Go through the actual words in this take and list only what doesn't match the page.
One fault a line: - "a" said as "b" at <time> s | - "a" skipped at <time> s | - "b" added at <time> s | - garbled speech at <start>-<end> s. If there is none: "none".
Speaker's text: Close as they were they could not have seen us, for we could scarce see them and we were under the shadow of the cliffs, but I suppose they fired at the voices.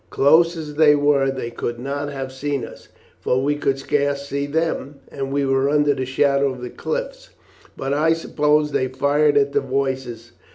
none